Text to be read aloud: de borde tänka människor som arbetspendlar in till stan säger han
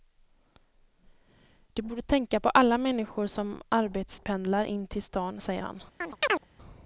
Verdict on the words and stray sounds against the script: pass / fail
fail